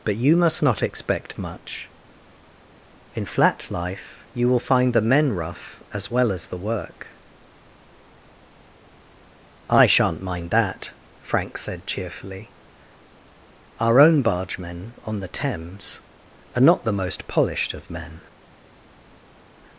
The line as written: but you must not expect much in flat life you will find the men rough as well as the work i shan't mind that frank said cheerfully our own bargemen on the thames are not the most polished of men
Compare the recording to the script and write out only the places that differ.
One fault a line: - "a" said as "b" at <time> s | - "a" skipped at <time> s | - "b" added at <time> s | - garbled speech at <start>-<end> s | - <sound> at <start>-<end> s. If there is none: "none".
none